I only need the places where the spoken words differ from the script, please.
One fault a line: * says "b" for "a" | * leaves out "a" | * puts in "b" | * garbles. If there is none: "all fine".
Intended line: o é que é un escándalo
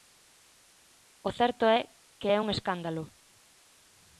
* puts in "certo"